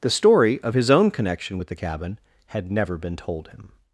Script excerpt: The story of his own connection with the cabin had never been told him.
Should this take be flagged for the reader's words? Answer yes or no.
no